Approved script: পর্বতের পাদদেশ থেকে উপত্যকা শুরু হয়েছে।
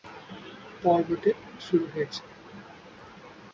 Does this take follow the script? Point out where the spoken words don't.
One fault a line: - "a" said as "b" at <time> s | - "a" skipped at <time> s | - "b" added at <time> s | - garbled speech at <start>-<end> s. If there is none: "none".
- "পাদদেশ থেকে উপত্যকা" skipped at 1.4 s